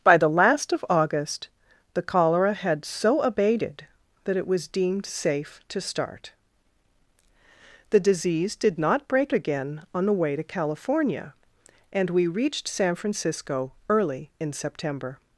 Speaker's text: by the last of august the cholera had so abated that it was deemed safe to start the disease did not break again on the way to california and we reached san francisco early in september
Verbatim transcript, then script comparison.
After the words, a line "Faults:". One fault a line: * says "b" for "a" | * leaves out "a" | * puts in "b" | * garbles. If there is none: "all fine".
by the last of august the cholera had so abated that it was deemed safe to start the disease did not break again on the way to california and we reached san francisco early in september
Faults:
all fine